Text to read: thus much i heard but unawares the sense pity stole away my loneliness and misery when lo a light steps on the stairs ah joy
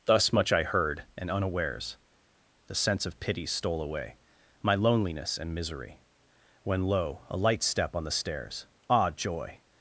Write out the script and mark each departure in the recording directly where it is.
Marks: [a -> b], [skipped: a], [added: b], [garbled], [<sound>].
thus much i heard [but -> and] unawares the sense [added: of] pity stole away my loneliness and misery when lo a light [steps -> step] on the stairs ah joy